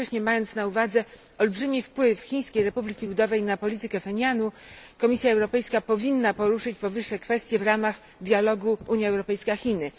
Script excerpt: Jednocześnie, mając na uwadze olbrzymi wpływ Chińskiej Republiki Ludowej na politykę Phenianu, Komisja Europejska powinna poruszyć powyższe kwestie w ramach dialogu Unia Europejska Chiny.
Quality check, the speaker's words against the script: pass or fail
pass